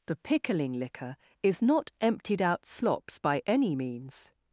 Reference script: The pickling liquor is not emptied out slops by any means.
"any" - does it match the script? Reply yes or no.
yes